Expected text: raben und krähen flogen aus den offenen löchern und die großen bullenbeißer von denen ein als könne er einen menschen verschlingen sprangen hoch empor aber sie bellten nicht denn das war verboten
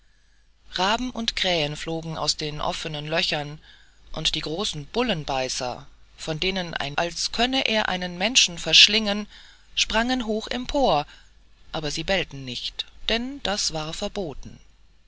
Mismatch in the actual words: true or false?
false